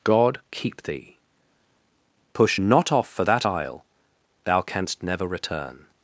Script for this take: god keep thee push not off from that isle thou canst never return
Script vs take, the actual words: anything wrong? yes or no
yes